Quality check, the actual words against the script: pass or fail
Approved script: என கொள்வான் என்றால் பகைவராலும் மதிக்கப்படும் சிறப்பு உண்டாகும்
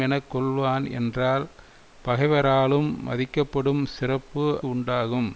pass